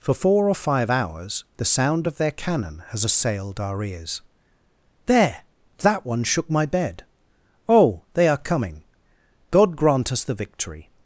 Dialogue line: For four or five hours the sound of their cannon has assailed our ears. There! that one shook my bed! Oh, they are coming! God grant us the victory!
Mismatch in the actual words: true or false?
false